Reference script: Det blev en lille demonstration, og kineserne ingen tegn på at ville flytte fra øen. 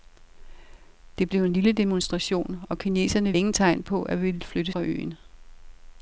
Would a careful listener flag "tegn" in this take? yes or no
no